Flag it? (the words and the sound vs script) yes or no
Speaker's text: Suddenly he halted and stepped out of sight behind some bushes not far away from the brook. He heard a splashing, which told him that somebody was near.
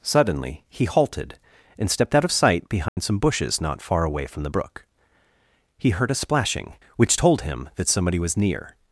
yes